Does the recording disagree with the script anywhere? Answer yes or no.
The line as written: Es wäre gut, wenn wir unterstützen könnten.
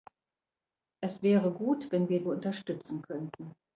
no